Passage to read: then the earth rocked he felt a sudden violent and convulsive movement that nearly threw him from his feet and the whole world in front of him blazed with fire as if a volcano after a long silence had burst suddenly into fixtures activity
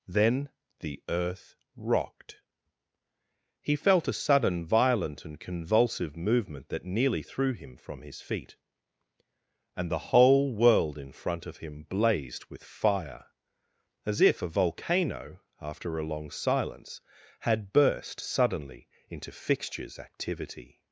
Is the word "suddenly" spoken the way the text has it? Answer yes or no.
yes